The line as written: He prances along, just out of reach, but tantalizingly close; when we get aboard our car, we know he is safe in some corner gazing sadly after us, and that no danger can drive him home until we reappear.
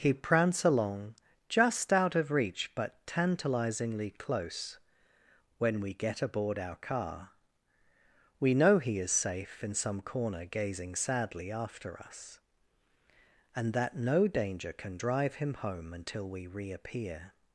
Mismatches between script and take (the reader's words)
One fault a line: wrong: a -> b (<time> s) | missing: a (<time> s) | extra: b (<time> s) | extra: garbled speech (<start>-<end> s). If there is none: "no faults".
wrong: prances -> prance (0.1 s)